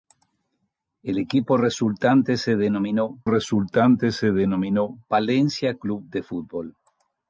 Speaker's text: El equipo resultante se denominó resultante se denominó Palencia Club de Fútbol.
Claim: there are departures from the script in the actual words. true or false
false